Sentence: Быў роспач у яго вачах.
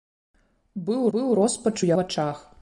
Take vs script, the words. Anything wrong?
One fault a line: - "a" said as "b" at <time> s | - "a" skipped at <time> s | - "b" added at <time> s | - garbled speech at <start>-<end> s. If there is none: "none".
- "быў" added at 1.1 s
- "яго" skipped at 1.9 s